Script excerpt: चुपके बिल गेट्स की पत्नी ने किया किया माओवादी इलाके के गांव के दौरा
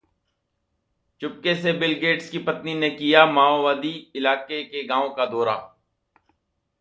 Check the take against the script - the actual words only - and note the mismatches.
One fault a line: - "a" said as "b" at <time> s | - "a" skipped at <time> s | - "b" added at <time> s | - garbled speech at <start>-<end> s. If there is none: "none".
- "से" added at 1.6 s
- "किया" skipped at 3.2 s
- "के" said as "का" at 5.1 s